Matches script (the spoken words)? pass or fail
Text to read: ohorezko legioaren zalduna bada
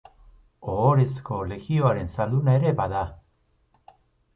fail